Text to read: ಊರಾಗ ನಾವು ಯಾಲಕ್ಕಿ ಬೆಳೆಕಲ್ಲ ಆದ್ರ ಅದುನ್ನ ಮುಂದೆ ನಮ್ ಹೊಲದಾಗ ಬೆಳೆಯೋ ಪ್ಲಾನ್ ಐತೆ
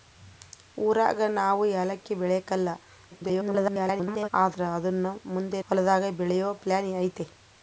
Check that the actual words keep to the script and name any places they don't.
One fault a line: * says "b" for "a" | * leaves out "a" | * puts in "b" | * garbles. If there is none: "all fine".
* garbles
* leaves out "ನಮ್"